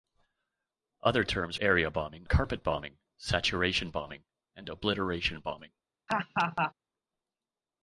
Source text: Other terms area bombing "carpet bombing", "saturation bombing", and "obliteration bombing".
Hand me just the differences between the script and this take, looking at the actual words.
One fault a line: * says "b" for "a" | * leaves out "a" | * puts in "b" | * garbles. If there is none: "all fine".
all fine